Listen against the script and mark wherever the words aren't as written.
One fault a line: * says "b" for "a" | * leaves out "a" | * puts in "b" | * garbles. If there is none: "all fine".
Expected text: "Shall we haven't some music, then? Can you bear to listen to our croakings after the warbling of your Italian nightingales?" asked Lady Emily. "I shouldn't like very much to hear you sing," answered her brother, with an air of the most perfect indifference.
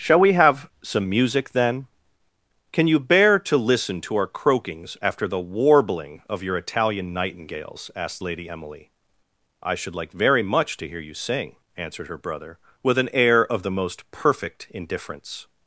* says "have" for "haven't"
* says "should" for "shouldn't"